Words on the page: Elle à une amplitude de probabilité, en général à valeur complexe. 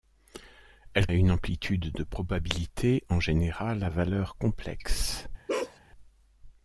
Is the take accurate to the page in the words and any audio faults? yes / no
no